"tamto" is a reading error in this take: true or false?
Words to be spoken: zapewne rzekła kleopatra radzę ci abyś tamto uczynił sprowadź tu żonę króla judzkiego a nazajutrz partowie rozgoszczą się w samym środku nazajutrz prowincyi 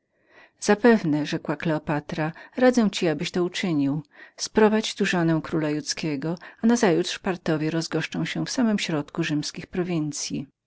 true